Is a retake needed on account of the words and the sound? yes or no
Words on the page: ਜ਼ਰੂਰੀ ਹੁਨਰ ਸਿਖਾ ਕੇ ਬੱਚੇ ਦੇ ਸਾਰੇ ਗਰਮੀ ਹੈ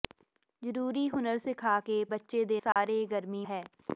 yes